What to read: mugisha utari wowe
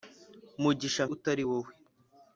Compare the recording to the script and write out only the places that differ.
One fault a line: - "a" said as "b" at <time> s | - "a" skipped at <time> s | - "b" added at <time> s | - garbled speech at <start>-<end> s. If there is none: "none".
none